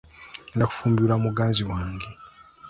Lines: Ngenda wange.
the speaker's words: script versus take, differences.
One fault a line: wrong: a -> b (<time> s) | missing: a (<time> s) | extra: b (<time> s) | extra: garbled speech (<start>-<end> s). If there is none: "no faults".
extra: kufumbirwa muganzi (0.7 s)